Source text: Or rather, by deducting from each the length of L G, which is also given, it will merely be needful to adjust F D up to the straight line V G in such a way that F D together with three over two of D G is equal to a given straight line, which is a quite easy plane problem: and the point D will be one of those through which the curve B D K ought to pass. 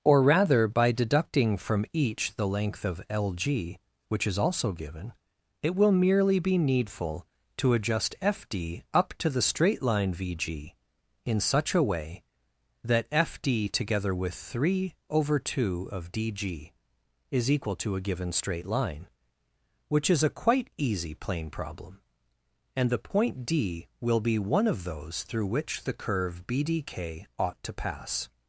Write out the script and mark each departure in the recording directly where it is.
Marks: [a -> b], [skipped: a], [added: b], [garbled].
Or rather, by deducting from each the length of L G, which is also given, it will merely be needful to adjust F D up to the straight line V G in such a way that F D together with three over two of D G is equal to a given straight line, which is a quite easy plane problem: and the point D will be one of those through which the curve B D K ought to pass.